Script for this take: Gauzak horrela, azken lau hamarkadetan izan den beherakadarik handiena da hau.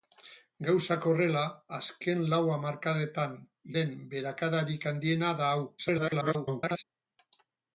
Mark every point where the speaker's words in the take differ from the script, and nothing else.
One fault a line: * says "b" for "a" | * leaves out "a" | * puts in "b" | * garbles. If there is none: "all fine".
* leaves out "izan"
* garbles